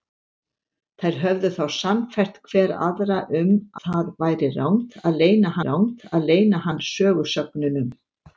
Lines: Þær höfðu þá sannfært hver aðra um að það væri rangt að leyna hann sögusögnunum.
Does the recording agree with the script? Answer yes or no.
no